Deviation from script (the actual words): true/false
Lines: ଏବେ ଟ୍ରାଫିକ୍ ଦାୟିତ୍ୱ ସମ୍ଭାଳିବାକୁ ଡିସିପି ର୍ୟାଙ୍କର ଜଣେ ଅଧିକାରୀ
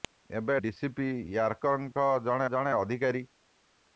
true